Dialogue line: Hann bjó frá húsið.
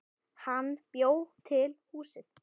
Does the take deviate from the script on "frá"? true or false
true